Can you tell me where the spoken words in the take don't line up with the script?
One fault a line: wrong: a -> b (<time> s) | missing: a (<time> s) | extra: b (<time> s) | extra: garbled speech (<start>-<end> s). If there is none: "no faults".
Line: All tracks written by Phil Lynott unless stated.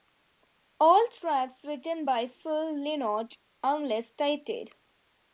no faults